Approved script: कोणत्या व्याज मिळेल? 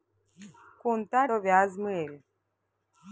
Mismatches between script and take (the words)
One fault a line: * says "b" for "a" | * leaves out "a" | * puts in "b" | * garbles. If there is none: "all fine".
all fine